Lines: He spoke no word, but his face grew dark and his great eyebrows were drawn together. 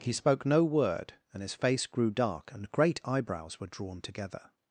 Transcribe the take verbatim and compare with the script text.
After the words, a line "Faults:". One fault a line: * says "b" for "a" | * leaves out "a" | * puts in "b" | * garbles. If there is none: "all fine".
He spoke no word, and his face grew dark and great eyebrows were drawn together.
Faults:
* says "and" for "but"
* leaves out "his"